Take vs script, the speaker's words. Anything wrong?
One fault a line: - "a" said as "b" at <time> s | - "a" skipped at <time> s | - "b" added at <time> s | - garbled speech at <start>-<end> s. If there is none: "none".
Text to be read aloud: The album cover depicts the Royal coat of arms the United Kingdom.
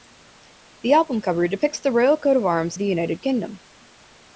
none